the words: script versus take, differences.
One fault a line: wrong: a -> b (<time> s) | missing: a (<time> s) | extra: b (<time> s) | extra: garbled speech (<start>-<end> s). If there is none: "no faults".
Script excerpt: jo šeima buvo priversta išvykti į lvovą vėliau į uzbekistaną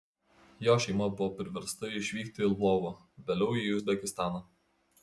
no faults